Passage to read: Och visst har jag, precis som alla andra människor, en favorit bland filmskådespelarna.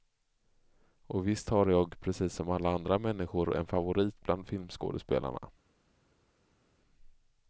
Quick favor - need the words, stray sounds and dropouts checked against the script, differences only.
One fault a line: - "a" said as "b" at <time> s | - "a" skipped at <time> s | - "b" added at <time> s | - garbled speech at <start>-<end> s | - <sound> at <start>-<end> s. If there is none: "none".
none